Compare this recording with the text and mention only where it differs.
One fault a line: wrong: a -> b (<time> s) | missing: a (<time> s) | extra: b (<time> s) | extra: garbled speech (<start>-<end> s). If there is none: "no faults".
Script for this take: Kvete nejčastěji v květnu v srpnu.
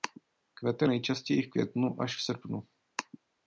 extra: až (2.0 s)